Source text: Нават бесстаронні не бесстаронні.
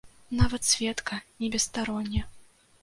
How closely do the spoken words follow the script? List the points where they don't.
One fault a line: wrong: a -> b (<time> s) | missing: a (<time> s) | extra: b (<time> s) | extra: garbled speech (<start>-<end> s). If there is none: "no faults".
wrong: бесстаронні -> сведка (0.6 s)